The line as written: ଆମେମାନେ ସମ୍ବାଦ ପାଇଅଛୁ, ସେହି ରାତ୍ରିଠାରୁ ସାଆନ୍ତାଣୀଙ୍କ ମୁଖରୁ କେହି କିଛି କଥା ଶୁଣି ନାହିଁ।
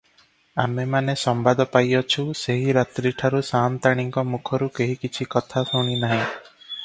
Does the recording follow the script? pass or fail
pass